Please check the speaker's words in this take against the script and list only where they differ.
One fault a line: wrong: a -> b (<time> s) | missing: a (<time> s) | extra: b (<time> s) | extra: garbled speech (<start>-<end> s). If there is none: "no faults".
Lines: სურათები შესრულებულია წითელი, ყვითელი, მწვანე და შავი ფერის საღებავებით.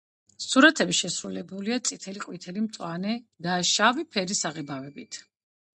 no faults